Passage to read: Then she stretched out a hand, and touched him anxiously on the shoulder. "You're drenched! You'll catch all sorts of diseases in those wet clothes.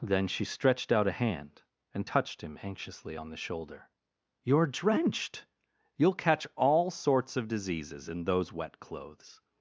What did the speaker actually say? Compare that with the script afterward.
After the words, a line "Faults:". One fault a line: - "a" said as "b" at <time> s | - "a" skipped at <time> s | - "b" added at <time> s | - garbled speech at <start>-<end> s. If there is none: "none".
Then she stretched out a hand, and touched him anxiously on the shoulder. "You're drenched! You'll catch all sorts of diseases in those wet clothes.
Faults:
none